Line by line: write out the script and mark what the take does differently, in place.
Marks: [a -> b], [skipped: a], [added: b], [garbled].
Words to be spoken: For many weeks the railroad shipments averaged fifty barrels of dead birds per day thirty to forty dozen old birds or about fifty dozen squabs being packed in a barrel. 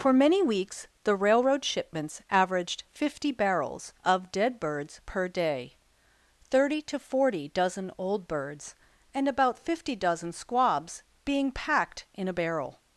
For many weeks the railroad shipments averaged fifty barrels of dead birds per day thirty to forty dozen old birds [or -> and] about fifty dozen squabs being packed in a barrel.